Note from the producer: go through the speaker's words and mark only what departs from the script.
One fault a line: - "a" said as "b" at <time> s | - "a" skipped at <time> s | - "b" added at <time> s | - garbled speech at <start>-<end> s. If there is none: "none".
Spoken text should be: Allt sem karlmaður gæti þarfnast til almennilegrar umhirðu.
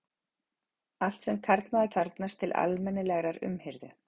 - "gæti" skipped at 1.9 s